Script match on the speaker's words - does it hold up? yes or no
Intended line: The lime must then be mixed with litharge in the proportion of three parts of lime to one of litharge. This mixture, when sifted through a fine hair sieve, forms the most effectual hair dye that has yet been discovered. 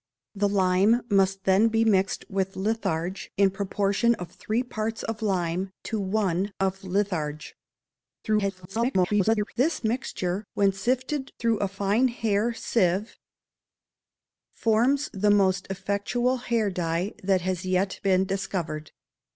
no